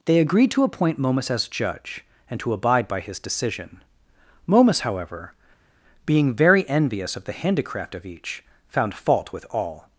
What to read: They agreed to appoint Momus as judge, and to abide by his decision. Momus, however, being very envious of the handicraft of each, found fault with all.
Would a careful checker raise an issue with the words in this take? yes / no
no